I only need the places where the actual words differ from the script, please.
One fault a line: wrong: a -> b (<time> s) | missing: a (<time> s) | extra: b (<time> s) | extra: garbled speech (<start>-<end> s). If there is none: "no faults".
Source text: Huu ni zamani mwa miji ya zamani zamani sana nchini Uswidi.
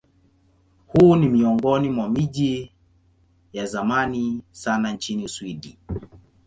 wrong: zamani -> miongoni (1.3 s)
missing: zamani (4.4 s)